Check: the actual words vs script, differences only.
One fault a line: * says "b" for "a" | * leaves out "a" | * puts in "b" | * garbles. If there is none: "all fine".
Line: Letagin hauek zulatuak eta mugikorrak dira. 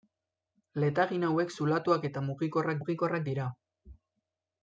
* puts in "mugikorrak"